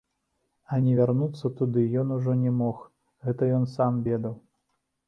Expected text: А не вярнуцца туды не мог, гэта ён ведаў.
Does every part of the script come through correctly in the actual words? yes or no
no